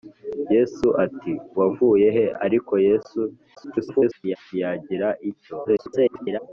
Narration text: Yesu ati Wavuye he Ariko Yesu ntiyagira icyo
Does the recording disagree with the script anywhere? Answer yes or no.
yes